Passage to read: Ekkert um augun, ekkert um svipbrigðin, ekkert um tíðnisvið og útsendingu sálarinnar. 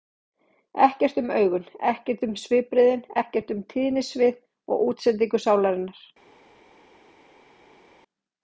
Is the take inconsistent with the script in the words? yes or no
no